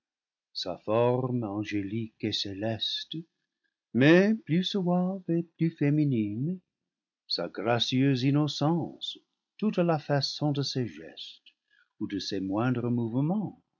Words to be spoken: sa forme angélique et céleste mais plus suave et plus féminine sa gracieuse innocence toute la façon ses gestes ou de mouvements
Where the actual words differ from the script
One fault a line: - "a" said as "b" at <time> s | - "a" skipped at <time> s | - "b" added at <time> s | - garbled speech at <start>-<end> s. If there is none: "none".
- "de" added at 10.5 s
- "ses moindres" added at 12.2 s